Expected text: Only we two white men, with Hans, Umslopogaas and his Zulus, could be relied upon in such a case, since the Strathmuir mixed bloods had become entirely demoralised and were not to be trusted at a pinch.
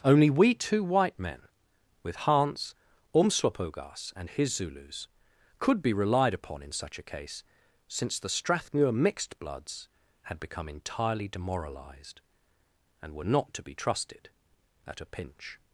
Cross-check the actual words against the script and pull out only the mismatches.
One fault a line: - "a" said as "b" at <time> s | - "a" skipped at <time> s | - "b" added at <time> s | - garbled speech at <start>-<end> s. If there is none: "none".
none